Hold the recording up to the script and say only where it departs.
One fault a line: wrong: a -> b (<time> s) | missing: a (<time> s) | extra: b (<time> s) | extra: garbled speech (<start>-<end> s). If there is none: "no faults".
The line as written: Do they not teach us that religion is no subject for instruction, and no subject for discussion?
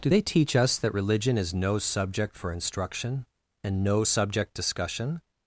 missing: not (0.2 s)
missing: for (4.5 s)